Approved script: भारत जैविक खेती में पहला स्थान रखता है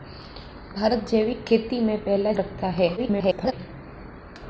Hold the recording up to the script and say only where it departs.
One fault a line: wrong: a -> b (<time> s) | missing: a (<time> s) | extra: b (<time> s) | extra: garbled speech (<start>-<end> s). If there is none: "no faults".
missing: स्थान (2.3 s)
extra: garbled speech (3.0-3.5 s)